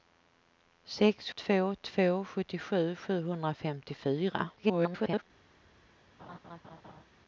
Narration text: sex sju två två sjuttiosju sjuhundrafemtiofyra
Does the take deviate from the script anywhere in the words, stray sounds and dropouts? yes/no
yes